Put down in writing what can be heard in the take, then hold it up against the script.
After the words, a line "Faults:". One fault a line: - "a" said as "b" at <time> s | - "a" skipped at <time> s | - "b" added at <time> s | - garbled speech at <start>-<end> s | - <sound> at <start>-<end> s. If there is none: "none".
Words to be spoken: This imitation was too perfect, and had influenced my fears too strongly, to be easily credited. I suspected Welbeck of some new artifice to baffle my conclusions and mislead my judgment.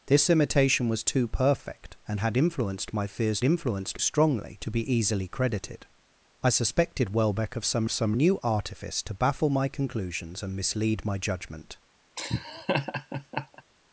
This imitation was too perfect, and had influenced my fears influenced strongly, to be easily credited. I suspected Welbeck of some some new artifice to baffle my conclusions and mislead my judgment.
Faults:
- "too" said as "influenced" at 3.4 s
- "some" added at 7.9 s
- laugh at 12.2-13.6 s